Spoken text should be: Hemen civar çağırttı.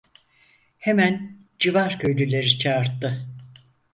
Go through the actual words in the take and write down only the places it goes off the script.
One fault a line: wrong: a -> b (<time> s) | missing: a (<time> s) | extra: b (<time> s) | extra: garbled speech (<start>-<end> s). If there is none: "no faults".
extra: köylüleri (2.0 s)